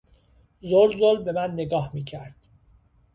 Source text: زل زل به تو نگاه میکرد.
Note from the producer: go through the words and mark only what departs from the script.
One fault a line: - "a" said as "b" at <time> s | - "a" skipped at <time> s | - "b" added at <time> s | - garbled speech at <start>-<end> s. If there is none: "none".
- "تو" said as "من" at 1.3 s